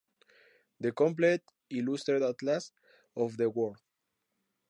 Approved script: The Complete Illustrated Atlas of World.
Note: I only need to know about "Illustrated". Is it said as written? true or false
true